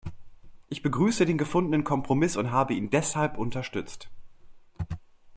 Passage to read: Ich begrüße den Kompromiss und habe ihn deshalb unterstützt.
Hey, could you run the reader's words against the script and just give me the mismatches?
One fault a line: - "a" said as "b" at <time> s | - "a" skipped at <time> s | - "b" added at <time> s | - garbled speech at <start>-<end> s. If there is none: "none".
- "gefundenen" added at 1.4 s